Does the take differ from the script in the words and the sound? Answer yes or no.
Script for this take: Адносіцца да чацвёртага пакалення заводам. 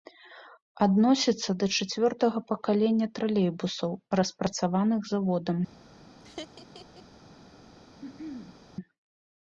yes